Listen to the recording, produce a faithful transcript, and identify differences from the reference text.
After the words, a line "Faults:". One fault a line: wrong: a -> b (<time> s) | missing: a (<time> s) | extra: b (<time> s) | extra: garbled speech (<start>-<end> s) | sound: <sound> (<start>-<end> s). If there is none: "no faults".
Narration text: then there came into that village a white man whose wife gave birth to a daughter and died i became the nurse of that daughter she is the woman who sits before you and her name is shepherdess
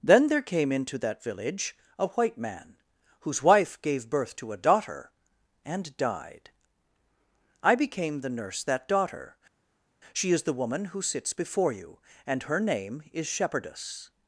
then there came into that village a white man whose wife gave birth to a daughter and died i became the nurse that daughter she is the woman who sits before you and her name is shepherdess
Faults:
missing: of (8.6 s)